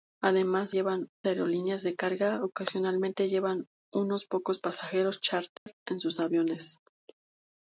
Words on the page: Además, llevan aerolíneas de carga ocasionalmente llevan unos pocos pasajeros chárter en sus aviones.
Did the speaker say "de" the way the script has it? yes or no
yes